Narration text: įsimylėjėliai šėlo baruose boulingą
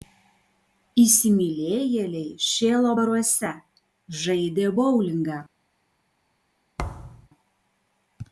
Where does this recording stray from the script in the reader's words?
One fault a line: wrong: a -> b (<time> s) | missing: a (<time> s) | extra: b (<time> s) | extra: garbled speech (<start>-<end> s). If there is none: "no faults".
extra: žaidė (4.3 s)